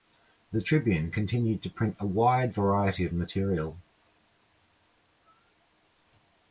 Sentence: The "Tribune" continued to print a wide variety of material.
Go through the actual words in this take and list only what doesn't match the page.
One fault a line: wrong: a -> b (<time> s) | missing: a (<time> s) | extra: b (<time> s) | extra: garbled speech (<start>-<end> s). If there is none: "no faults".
no faults